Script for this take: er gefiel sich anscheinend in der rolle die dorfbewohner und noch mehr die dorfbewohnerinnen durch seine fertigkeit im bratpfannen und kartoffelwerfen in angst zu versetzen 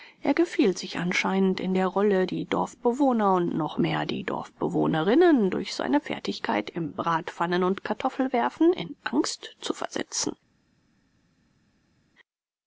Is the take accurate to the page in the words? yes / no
yes